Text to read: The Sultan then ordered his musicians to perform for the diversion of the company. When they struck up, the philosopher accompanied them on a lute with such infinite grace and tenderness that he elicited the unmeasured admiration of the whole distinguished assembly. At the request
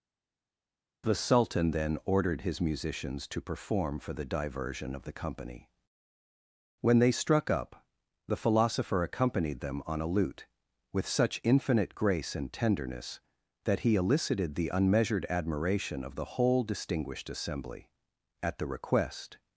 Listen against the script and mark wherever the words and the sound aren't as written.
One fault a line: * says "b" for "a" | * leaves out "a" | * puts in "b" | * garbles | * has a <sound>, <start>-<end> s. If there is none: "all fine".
all fine